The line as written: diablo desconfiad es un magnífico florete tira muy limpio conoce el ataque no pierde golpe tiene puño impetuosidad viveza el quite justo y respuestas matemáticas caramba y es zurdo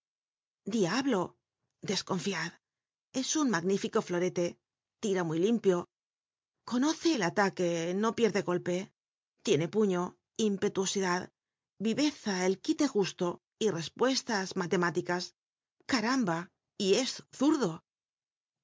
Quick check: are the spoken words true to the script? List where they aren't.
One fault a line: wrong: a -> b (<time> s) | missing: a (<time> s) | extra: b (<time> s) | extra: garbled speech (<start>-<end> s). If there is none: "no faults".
no faults